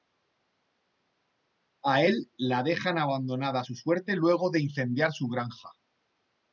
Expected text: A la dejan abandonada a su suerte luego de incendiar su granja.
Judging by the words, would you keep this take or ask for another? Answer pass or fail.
fail